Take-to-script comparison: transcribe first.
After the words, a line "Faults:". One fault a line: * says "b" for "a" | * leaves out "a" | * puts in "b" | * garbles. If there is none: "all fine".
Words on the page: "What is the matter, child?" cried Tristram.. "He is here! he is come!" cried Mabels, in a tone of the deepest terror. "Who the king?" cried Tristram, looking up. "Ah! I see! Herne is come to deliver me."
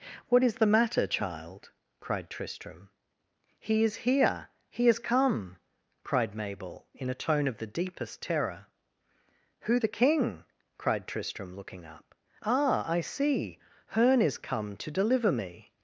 "What is the matter, child?" cried Tristram.. "He is here! he is come!" cried Mabel, in a tone of the deepest terror. "Who the king?" cried Tristram, looking up. "Ah! I see! Herne is come to deliver me."
Faults:
* says "Mabel" for "Mabels"